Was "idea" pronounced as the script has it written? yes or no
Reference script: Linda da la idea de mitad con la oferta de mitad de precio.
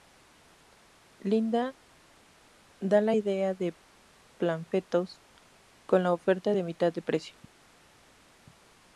yes